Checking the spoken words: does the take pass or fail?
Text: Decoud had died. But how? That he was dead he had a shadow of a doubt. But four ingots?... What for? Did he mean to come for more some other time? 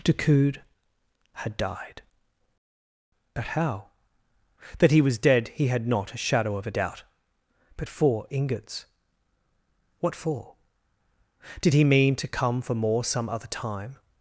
fail